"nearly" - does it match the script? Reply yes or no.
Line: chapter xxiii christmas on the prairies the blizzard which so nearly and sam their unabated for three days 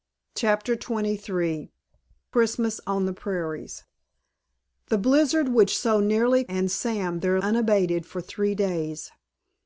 yes